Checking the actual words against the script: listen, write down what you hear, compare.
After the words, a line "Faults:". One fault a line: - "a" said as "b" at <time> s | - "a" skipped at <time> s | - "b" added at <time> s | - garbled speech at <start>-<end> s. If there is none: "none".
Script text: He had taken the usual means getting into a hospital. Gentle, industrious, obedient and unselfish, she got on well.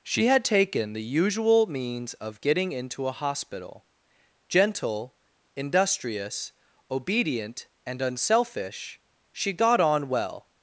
She had taken the usual means of getting into a hospital. Gentle, industrious, obedient and unselfish, she got on well.
Faults:
- "He" said as "She" at 0.0 s
- "of" added at 2.1 s